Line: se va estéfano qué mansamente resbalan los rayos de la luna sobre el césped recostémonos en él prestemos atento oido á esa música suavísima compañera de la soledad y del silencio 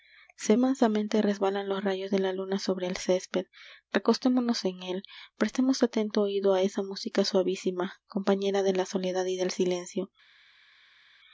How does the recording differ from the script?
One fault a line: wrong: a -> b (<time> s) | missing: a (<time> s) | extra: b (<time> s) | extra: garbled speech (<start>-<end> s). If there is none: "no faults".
missing: va estéfano qué (0.6 s)